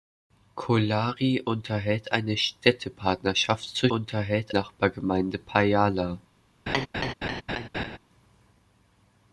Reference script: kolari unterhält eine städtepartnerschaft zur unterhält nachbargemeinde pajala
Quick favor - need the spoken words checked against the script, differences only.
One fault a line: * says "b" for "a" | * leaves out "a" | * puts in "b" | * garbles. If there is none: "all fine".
all fine